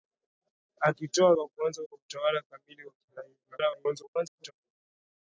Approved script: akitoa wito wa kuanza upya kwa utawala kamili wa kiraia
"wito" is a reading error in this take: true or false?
true